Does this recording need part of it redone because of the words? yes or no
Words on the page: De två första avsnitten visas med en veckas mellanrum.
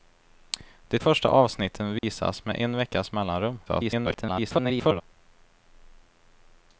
yes